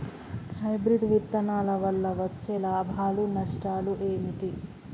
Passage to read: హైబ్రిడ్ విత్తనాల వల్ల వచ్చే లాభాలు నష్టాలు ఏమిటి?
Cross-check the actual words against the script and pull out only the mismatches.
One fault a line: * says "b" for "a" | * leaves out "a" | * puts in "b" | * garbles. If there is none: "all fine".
all fine